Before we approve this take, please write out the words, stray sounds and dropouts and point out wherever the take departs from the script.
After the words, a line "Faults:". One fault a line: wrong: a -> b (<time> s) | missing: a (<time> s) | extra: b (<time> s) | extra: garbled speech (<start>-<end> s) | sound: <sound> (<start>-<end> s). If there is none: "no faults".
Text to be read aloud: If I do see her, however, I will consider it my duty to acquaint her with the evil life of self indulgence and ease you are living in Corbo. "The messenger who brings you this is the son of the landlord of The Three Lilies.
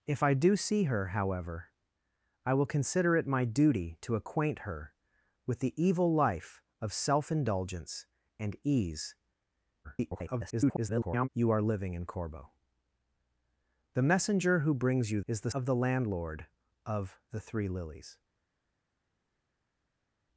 If I do see her, however, I will consider it my duty to acquaint her with the evil life of self indulgence and ease [garbled] you are living in Corbo. "The messenger who brings you is the of the landlord of The Three Lilies.
Faults:
extra: garbled speech (9.8-11.3 s)
missing: this (15.2 s)
missing: son (15.5 s)